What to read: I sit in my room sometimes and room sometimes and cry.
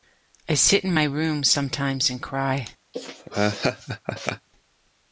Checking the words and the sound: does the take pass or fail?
fail